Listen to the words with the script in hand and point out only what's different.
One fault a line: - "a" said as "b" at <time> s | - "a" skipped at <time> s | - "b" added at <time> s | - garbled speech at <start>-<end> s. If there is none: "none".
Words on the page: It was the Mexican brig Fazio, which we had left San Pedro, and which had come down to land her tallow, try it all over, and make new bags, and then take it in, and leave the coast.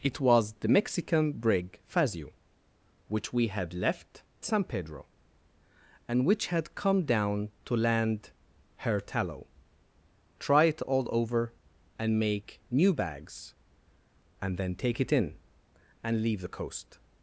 none